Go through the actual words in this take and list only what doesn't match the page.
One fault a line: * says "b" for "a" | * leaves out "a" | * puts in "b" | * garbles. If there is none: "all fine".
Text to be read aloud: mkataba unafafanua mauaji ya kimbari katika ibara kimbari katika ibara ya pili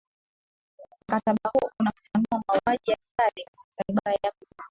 * puts in "huo"
* leaves out "kimbari katika ibara"